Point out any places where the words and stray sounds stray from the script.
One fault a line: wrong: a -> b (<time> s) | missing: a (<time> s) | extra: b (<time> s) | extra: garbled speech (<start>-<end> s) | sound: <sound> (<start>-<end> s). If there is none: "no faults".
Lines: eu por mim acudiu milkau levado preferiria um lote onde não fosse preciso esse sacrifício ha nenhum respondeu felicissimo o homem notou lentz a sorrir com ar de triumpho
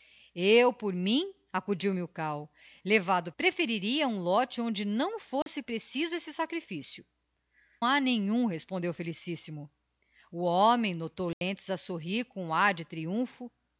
sound: dropout (5.4-5.5 s)
sound: dropout (11.3-11.4 s)